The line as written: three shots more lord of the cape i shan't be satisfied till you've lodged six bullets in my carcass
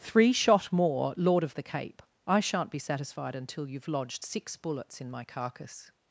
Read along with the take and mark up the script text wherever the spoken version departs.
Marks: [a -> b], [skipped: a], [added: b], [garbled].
three [shots -> shot] more lord of the cape i shan't be satisfied [till -> until] you've lodged six bullets in my carcass